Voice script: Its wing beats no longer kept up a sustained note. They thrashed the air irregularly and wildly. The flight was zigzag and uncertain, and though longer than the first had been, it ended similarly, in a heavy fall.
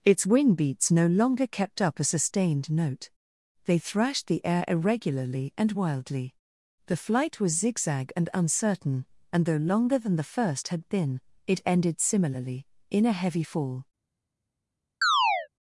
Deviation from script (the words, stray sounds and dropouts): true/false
true